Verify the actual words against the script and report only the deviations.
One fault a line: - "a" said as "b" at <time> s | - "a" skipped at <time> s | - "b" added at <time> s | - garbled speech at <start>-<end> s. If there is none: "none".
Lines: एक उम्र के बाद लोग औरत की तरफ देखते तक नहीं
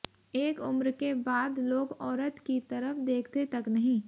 none